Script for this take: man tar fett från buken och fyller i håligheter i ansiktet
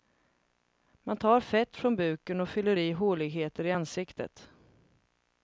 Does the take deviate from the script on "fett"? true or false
false